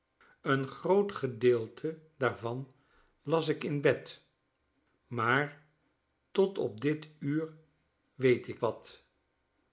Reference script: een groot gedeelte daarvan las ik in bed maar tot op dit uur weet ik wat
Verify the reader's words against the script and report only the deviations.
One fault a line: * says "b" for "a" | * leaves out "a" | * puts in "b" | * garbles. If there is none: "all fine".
all fine